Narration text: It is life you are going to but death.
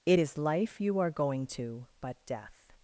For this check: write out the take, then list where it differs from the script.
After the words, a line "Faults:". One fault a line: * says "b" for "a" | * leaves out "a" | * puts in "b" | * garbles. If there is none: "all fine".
It is life you are going to but death.
Faults:
all fine